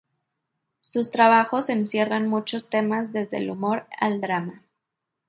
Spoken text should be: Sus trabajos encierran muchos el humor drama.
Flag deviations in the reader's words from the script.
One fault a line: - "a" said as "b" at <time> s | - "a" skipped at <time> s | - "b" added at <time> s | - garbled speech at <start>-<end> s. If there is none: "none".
- "temas desde" added at 2.7 s
- "al" added at 4.0 s